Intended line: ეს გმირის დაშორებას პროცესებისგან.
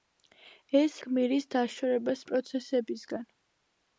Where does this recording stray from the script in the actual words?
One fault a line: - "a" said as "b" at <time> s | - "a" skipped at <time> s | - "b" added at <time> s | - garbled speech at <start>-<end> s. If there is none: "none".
none